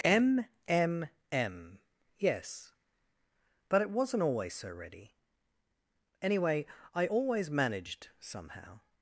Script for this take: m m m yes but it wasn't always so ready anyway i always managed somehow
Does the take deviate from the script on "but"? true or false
false